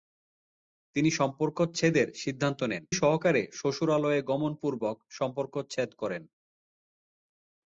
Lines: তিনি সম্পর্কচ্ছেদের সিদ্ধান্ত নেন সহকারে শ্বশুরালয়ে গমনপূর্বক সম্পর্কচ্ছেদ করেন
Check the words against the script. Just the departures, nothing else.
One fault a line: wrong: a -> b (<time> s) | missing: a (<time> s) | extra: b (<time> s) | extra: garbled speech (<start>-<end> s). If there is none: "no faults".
no faults